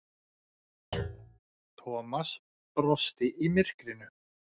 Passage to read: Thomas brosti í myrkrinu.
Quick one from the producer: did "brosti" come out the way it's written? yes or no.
yes